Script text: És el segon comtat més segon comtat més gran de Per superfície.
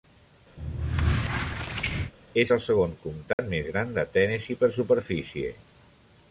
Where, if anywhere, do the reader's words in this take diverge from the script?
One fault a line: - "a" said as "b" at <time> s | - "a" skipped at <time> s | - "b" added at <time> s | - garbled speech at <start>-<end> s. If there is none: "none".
- "segon comtat més" skipped at 3.7 s
- "Tennessee" added at 4.2 s